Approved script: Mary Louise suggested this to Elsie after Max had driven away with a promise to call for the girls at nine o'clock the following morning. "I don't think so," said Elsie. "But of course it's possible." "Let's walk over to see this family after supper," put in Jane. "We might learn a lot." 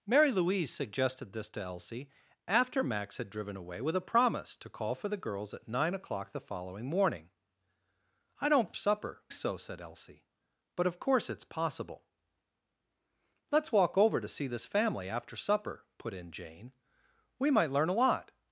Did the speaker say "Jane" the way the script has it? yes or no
yes